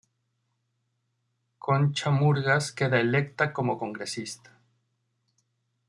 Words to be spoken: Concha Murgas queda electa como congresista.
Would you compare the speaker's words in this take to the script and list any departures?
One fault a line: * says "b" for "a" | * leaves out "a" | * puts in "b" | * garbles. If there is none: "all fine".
all fine